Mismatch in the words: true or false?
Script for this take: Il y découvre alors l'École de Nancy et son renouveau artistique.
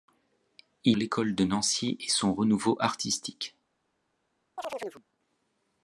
true